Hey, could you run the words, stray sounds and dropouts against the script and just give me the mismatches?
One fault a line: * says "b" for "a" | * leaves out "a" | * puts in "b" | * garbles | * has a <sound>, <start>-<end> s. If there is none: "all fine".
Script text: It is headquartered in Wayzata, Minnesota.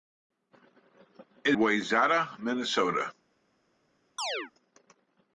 * leaves out "is headquartered in"
* has a chirp, 4.2-4.5 s